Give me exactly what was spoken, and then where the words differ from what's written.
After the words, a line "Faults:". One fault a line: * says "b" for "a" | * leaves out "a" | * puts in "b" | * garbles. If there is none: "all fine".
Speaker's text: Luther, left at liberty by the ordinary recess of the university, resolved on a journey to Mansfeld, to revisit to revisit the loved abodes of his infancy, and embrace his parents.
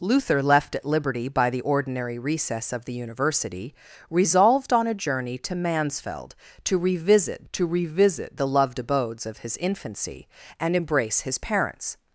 Luther, left at liberty by the ordinary recess of the university, resolved on a journey to Mansfeld, to revisit to revisit the loved abodes of his infancy, and embrace his parents.
Faults:
all fine